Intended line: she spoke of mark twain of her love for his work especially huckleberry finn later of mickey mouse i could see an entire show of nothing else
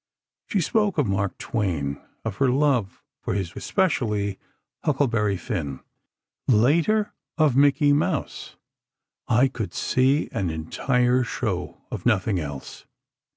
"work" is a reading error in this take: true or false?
true